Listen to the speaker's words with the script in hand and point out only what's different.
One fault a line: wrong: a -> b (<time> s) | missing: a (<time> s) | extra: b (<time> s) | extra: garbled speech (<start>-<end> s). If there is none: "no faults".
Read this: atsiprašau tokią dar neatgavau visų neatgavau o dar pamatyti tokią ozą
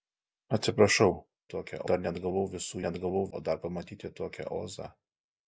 no faults